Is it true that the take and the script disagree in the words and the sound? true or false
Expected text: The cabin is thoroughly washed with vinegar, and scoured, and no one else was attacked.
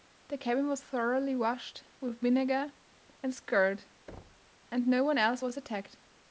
true